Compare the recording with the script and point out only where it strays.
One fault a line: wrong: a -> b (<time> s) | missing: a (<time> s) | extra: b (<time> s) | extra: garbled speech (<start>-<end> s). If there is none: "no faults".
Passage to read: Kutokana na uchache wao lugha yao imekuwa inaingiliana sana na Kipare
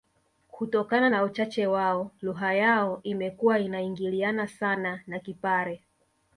no faults